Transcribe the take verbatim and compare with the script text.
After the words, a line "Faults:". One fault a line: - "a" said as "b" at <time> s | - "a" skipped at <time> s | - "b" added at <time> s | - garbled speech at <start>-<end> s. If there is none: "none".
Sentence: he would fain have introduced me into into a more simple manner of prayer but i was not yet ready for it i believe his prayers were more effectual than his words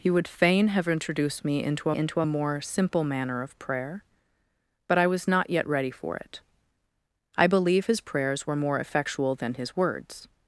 he would fain have introduced me into into a more simple manner of prayer but i was not yet ready for it i believe his prayers were more effectual than his words
Faults:
none